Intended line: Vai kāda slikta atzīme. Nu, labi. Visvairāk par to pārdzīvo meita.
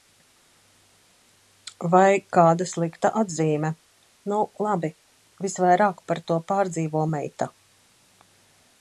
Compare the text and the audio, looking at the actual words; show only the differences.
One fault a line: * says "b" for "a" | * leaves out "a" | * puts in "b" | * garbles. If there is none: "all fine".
all fine